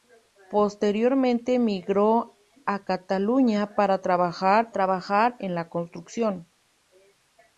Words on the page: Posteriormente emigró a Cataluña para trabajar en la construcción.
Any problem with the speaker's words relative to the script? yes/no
yes